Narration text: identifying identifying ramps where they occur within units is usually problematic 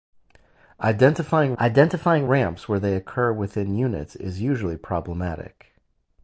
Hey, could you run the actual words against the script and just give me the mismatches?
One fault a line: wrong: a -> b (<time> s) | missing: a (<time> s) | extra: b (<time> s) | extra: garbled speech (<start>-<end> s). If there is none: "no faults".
no faults